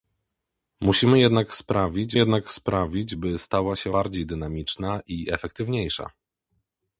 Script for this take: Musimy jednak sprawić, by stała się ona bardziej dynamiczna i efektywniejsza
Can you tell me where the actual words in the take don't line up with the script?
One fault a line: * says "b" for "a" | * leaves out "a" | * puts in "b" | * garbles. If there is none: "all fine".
* puts in "jednak sprawić"
* leaves out "ona"